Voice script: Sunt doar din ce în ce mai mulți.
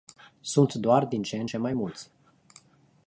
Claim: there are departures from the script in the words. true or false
false